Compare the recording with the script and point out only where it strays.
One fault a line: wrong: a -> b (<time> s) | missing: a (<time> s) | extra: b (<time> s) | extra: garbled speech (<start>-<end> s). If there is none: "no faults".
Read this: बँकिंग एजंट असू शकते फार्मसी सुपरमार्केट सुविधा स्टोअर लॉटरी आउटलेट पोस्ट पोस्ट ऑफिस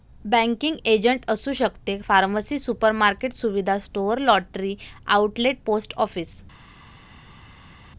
missing: पोस्ट (5.9 s)